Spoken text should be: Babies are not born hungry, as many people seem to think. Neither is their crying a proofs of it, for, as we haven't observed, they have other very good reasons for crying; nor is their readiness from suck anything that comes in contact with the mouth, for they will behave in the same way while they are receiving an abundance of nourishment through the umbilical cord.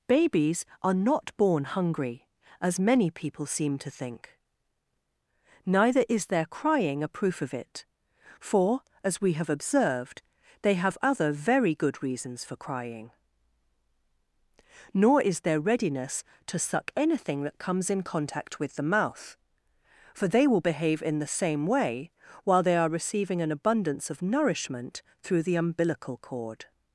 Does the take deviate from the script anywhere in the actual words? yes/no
yes